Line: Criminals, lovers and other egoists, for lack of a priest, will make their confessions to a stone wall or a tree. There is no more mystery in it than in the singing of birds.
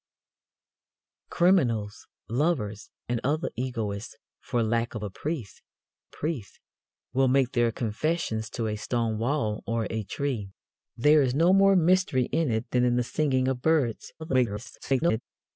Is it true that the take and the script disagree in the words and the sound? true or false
true